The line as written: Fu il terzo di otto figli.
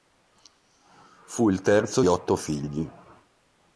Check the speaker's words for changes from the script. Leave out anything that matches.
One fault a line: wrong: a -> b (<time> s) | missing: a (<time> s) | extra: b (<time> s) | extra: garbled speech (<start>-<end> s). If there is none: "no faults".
missing: di (2.0 s)